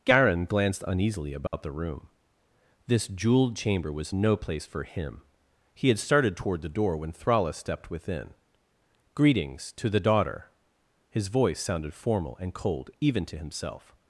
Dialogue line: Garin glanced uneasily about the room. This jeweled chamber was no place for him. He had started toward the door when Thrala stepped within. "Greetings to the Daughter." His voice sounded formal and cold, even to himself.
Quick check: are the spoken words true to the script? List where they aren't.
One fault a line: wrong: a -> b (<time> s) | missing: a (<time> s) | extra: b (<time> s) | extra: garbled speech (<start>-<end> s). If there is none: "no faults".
no faults